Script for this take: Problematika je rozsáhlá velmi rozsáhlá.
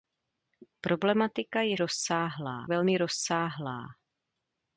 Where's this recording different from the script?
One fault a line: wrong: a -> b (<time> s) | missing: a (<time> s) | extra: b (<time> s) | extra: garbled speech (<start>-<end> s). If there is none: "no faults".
no faults